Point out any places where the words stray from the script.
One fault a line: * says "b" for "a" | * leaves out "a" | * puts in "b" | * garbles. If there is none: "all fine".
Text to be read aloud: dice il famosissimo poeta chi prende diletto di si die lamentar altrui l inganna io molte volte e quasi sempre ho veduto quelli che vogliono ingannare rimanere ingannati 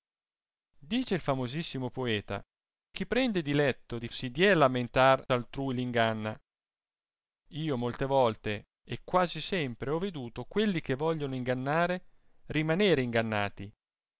all fine